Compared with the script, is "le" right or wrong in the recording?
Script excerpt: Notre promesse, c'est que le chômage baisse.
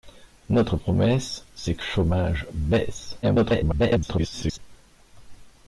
wrong